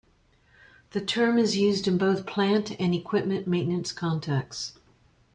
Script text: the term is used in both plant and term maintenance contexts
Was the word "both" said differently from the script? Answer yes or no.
no